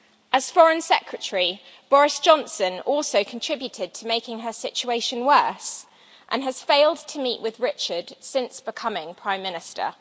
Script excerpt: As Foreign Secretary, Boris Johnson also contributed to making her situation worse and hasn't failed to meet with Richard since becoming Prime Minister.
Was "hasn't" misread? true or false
true